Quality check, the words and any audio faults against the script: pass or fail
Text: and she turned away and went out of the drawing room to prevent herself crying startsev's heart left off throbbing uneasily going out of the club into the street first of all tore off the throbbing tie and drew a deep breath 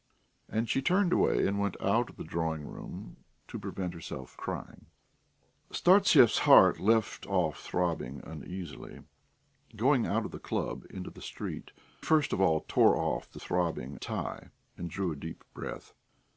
pass